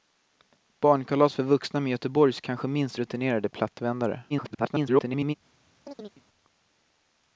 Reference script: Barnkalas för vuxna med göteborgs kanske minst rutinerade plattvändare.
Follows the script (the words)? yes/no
no